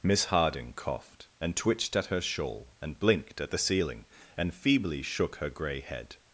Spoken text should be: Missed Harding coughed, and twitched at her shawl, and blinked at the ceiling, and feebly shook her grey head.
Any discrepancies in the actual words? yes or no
yes